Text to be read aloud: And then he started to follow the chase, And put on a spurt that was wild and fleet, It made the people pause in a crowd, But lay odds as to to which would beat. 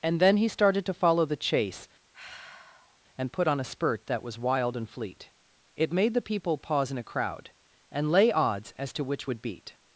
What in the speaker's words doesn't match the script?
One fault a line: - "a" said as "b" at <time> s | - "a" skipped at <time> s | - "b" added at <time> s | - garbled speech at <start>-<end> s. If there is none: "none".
- "But" said as "And" at 7.9 s
- "to" skipped at 9.0 s